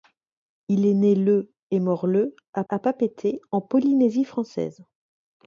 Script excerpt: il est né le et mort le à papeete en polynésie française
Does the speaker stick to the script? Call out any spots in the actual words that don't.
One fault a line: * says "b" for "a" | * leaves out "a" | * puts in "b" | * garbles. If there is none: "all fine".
* puts in "à"